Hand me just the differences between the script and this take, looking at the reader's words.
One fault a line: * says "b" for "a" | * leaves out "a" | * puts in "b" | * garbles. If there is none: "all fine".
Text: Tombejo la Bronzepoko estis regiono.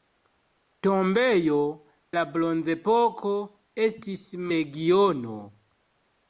all fine